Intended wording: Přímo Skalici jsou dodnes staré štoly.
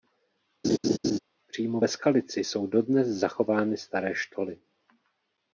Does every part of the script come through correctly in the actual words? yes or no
no